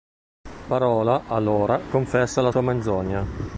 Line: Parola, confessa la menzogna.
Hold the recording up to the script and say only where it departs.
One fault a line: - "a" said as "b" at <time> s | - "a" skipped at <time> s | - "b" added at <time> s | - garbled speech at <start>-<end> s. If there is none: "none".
- "allora" added at 1.3 s
- "sua" added at 2.5 s